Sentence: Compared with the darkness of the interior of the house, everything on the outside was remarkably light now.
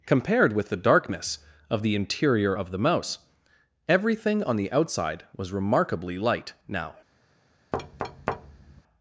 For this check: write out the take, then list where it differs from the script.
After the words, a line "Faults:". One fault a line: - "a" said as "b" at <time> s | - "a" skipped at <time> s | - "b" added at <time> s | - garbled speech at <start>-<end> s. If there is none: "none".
Compared with the darkness of the interior of the mouse, everything on the outside was remarkably light now.
Faults:
- "house" said as "mouse" at 2.8 s